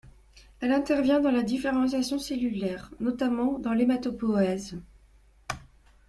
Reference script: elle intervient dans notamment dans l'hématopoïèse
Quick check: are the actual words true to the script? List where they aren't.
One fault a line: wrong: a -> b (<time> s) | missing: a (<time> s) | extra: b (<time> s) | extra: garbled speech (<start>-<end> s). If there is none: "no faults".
extra: la différenciation cellulaire (1.3 s)